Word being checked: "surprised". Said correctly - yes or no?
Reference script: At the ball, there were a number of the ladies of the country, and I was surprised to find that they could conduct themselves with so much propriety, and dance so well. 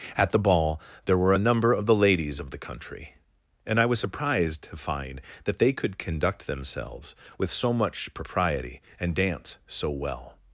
yes